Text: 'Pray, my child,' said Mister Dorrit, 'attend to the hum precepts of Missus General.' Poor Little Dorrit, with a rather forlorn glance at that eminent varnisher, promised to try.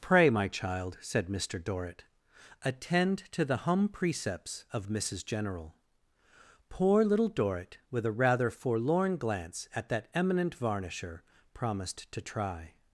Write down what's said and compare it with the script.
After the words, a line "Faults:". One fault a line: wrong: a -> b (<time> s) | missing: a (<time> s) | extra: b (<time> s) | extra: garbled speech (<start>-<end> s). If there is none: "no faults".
'Pray, my child,' said Mister Dorrit, 'attend to the hum precepts of Missus General.' Poor Little Dorrit, with a rather forlorn glance at that eminent varnisher, promised to try.
Faults:
no faults